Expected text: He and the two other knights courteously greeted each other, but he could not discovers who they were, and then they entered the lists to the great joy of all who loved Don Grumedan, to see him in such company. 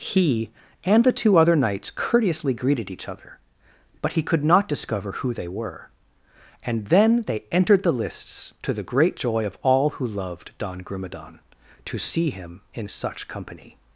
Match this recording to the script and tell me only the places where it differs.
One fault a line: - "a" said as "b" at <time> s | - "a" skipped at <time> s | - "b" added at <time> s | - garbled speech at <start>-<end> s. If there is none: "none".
- "discovers" said as "discover" at 4.7 s